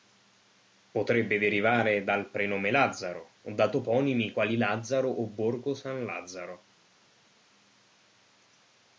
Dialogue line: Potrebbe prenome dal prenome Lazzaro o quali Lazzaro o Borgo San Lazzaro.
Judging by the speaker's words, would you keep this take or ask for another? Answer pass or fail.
fail